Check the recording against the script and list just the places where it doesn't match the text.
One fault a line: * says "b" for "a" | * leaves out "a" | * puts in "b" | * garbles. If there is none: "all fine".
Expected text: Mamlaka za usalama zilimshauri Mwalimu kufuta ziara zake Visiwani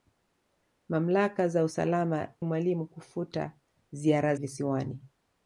* leaves out "zilimshauri"
* leaves out "zake"